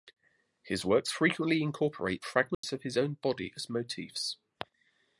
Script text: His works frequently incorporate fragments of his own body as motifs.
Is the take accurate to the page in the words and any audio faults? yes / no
no